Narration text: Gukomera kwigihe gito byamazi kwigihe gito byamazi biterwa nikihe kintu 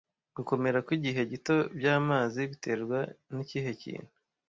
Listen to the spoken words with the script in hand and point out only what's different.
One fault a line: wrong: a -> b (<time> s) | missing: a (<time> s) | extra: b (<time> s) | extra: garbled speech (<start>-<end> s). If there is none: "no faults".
missing: kwigihe gito byamazi (2.4 s)